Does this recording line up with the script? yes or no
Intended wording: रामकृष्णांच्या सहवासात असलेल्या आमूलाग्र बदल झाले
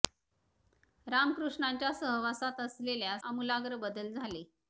yes